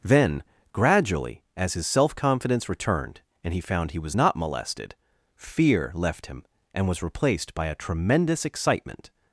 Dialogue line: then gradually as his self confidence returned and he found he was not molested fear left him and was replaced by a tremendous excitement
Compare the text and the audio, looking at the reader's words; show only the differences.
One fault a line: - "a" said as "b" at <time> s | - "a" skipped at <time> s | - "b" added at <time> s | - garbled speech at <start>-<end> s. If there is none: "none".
none